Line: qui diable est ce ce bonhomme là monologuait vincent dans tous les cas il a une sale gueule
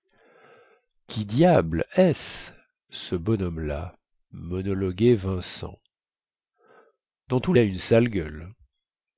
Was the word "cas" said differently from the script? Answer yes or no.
yes